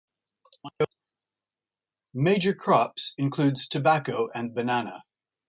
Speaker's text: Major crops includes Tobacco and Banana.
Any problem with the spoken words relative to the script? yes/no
no